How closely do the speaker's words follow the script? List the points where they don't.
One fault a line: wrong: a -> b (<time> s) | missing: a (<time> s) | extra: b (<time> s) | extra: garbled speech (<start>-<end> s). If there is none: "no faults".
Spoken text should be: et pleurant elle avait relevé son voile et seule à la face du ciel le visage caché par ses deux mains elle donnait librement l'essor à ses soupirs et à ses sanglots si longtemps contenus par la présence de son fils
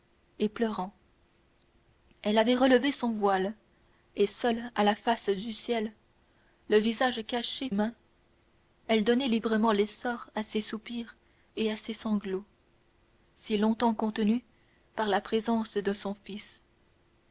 missing: par ses deux (7.7 s)